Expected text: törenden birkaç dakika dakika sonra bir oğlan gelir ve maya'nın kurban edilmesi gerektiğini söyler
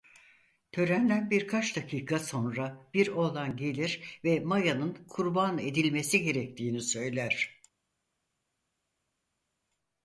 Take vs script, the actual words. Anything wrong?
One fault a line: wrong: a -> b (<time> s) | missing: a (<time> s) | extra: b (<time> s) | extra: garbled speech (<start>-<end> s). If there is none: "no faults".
missing: dakika (2.2 s)